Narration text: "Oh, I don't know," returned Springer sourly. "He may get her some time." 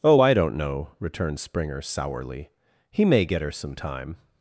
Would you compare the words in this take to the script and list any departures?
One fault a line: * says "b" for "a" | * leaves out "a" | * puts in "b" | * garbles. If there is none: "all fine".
all fine